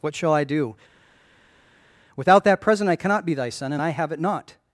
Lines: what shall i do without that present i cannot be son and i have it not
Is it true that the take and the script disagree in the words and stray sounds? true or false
true